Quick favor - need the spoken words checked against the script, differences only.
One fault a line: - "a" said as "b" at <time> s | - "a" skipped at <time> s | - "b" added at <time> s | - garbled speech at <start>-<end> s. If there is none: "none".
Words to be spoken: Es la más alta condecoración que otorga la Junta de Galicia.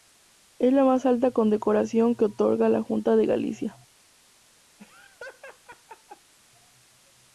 none